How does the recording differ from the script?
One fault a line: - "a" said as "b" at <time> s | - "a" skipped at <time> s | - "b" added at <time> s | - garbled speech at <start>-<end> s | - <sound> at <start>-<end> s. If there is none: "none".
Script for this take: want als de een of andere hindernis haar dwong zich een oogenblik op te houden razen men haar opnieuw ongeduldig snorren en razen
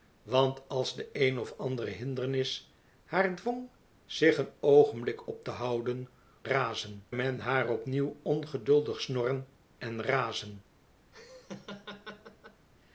- laugh at 11.1-12.7 s